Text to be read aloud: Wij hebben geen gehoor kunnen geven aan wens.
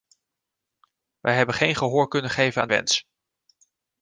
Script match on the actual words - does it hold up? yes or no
yes